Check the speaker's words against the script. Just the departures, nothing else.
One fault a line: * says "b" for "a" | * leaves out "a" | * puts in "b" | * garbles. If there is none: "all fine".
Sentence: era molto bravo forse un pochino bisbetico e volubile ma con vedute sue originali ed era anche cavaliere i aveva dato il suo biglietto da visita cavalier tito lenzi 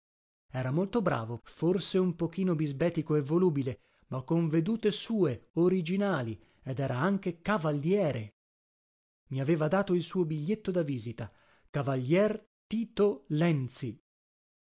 all fine